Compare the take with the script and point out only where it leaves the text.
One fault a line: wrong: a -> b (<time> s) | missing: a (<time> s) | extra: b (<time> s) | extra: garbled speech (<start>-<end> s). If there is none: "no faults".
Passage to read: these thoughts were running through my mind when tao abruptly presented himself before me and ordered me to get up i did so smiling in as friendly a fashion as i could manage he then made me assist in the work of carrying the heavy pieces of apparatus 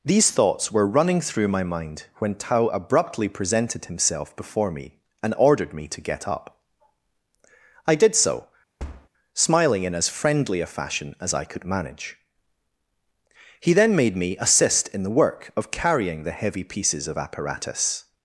no faults